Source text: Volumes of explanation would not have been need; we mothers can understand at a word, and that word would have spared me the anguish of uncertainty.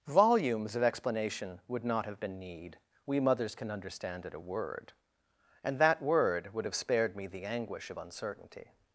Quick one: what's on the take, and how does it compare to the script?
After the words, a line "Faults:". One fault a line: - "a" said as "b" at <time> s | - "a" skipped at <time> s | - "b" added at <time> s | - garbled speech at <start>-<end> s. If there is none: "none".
Volumes of explanation would not have been need; we mothers can understand at a word, and that word would have spared me the anguish of uncertainty.
Faults:
none